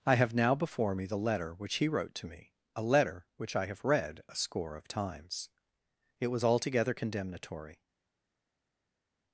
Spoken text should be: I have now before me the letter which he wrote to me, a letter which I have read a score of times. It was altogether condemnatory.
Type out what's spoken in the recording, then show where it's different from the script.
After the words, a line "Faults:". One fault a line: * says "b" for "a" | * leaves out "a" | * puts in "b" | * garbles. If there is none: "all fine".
I have now before me the letter which he wrote to me, a letter which I have read a score of times. It was altogether condemnatory.
Faults:
all fine